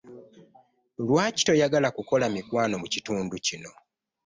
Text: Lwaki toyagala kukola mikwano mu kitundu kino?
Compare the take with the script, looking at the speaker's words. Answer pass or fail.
pass